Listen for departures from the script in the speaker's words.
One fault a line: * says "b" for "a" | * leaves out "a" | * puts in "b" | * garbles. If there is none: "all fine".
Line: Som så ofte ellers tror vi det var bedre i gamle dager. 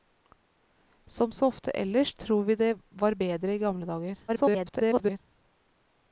* garbles